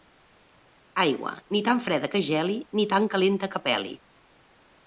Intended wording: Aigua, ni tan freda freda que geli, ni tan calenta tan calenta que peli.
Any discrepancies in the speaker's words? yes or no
yes